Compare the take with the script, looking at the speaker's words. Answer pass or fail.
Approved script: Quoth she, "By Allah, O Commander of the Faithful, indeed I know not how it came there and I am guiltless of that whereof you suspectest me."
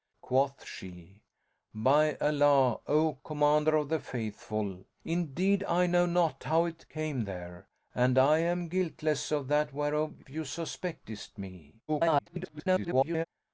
fail